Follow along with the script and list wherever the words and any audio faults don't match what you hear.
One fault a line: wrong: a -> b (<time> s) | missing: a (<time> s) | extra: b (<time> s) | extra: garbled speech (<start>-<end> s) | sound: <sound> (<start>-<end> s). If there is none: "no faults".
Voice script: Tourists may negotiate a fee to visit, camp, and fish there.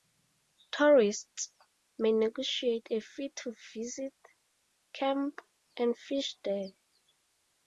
no faults